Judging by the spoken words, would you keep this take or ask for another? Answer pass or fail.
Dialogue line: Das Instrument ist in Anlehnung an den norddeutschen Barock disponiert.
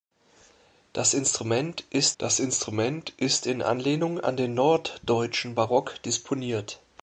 fail